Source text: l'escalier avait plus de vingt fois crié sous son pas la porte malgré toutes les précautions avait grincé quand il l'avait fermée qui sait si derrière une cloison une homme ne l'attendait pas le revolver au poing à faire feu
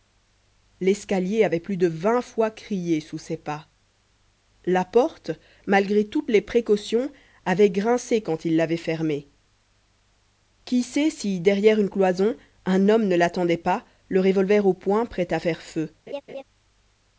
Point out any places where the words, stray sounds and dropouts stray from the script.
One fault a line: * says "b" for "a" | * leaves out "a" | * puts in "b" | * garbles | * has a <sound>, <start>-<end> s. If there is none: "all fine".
* says "ses" for "son"
* says "un" for "une"
* puts in "prêt"
* has a laugh, 16.1-16.4 s